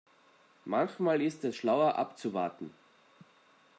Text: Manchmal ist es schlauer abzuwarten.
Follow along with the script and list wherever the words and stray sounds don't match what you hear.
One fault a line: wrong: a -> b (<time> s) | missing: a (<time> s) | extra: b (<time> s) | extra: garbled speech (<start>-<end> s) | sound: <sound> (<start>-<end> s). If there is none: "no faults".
no faults